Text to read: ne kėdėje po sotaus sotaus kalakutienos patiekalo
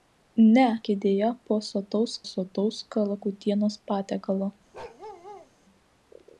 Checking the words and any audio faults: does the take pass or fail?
fail